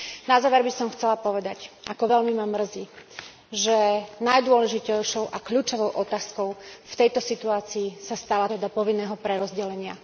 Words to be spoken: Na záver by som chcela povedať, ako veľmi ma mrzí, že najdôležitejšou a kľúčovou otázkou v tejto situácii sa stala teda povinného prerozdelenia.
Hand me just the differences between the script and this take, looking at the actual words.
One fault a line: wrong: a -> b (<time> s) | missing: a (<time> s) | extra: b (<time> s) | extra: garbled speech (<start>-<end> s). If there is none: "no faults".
no faults